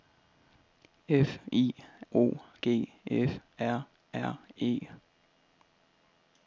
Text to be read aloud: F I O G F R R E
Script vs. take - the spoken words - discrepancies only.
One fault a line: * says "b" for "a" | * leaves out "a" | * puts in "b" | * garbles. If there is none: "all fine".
all fine